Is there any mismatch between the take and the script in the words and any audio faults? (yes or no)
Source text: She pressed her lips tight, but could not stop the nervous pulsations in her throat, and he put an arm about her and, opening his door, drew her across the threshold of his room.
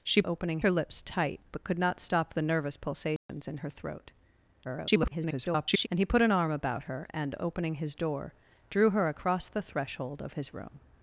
yes